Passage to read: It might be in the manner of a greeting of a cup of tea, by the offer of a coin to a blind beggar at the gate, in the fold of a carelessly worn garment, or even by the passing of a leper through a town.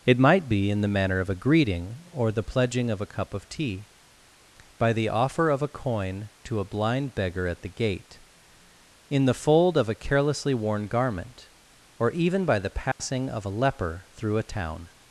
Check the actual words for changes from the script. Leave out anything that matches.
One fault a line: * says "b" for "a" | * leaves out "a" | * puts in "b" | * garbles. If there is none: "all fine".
* puts in "or the pledging"